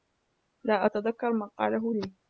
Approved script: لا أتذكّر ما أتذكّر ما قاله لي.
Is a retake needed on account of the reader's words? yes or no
yes